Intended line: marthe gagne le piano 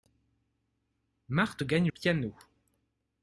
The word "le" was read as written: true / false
false